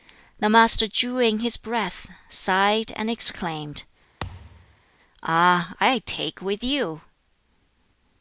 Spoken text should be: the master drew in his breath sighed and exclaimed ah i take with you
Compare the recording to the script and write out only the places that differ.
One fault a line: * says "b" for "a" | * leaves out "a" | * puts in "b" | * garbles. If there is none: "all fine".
all fine